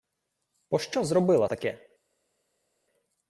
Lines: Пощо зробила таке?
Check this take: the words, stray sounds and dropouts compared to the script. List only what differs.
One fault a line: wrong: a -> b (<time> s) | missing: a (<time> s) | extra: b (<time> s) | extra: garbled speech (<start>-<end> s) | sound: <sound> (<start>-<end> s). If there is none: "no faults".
no faults